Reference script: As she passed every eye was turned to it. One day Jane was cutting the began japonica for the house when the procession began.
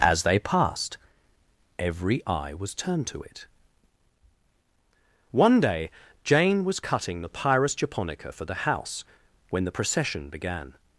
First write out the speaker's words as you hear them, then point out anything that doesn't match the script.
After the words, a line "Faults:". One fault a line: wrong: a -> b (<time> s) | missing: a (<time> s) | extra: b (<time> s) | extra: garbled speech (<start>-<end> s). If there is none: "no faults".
As they passed every eye was turned to it. One day Jane was cutting the pyrus japonica for the house when the procession began.
Faults:
wrong: she -> they (0.2 s)
wrong: began -> pyrus (7.3 s)